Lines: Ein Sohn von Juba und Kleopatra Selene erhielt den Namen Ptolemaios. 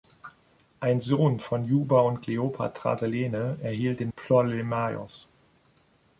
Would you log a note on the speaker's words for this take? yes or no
yes